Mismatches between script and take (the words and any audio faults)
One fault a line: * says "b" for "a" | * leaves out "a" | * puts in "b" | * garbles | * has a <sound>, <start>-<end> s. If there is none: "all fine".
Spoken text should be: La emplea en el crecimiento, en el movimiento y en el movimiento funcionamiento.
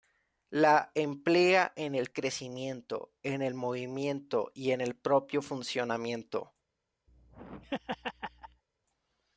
* says "propio" for "movimiento"
* has a laugh, 7.1-8.6 s